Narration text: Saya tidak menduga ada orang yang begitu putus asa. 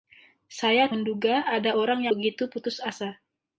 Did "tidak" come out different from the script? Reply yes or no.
yes